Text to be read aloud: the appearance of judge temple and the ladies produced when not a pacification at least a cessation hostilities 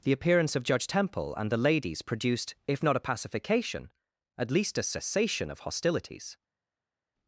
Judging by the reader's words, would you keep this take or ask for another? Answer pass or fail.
fail